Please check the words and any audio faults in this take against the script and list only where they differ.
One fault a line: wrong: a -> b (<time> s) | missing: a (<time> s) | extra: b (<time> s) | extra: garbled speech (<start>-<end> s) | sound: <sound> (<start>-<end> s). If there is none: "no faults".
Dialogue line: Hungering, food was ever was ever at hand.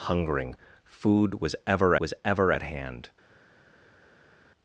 no faults